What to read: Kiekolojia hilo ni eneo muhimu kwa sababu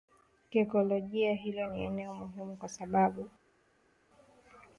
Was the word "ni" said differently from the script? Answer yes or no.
no